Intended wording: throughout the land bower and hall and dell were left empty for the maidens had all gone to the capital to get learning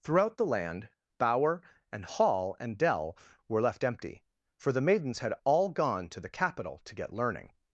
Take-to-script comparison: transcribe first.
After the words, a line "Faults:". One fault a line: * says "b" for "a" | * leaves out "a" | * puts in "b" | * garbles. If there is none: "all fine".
throughout the land bower and hall and dell were left empty for the maidens had all gone to the capital to get learning
Faults:
all fine